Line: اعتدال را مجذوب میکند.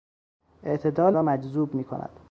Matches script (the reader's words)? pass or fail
pass